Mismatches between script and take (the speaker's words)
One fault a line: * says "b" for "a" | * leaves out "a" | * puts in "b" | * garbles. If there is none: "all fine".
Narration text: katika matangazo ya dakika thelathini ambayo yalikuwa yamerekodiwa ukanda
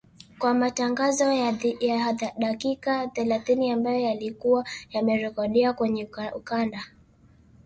* says "kwa" for "katika"
* puts in "kwenye"